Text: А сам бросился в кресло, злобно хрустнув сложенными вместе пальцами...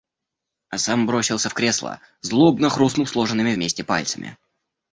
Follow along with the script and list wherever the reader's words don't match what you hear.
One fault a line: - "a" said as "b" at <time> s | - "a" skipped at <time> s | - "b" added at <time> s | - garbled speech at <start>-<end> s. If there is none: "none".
none